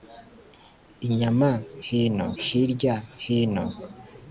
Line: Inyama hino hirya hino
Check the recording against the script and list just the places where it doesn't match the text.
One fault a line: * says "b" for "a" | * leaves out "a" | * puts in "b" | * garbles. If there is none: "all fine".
all fine